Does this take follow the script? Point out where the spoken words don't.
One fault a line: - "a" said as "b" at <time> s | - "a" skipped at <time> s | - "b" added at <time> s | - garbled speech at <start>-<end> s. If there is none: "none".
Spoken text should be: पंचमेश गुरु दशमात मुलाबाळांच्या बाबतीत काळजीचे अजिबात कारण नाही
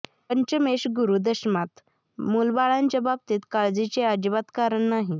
none